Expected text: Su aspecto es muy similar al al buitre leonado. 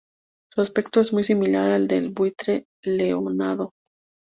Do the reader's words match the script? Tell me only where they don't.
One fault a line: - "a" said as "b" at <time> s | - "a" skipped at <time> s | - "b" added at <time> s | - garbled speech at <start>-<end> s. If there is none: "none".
- "al" said as "del" at 1.9 s